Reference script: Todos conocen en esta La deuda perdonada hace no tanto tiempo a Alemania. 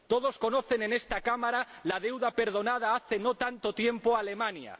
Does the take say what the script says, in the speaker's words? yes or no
no